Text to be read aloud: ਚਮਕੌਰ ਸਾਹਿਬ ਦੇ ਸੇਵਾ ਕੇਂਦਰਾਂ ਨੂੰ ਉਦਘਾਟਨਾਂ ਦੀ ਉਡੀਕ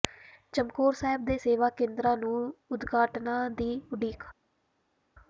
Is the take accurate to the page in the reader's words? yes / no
yes